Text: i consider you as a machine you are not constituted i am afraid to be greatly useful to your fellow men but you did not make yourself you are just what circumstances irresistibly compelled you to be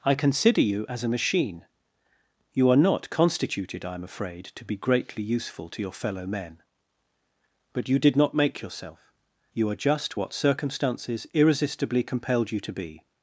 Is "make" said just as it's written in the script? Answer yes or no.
yes